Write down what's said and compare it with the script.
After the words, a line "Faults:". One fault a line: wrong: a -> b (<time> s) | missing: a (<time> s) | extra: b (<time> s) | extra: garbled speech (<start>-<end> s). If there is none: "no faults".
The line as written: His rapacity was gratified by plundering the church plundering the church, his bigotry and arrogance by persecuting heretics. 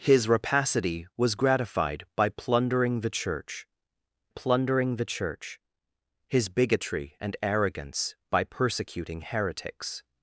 His rapacity was gratified by plundering the church plundering the church, his bigotry and arrogance by persecuting heretics.
Faults:
no faults